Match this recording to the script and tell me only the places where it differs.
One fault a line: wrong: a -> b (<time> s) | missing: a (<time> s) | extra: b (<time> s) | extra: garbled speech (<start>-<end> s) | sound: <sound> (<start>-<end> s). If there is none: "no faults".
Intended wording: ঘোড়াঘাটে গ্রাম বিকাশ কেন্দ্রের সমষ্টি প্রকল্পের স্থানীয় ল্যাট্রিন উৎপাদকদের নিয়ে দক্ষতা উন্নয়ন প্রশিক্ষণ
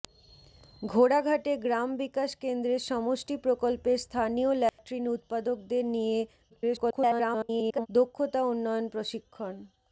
sound: dropout (4.7-4.8 s)
extra: garbled speech (6.5-7.9 s)